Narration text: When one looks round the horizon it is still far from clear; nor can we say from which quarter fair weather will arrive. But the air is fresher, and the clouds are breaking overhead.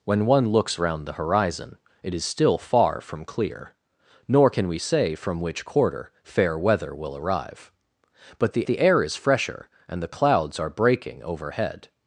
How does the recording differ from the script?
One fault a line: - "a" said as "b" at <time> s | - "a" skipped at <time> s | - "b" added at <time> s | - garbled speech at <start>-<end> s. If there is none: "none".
- "the" added at 8.7 s